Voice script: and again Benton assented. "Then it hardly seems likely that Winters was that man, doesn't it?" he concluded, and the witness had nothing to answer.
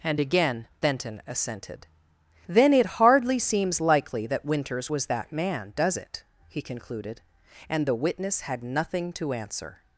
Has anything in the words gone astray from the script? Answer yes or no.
yes